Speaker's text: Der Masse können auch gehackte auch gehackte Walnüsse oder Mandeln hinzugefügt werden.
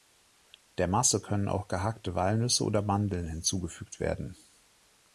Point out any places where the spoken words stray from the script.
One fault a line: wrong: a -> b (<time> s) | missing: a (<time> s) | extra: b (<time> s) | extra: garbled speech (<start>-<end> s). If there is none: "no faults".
missing: auch gehackte (2.1 s)